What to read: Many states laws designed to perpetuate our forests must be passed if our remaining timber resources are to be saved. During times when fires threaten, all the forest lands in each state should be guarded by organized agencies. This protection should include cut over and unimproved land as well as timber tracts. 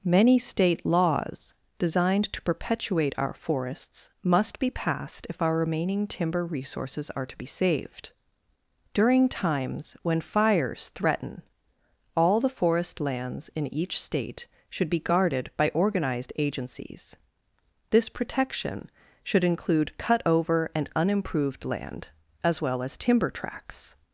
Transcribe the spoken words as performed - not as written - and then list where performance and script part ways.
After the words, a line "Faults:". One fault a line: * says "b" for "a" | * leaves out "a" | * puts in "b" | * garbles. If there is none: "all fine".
Many state laws designed to perpetuate our forests must be passed if our remaining timber resources are to be saved. During times when fires threaten, all the forest lands in each state should be guarded by organized agencies. This protection should include cut over and unimproved land as well as timber tracts.
Faults:
* says "state" for "states"